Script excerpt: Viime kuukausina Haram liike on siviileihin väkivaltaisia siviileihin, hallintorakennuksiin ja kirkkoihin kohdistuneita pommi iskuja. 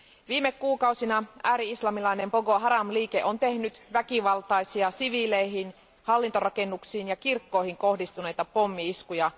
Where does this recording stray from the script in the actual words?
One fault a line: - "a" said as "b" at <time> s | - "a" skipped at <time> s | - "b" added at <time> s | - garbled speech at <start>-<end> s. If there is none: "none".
- "ääri islamilainen Boko" added at 1.4 s
- "siviileihin" said as "tehnyt" at 3.4 s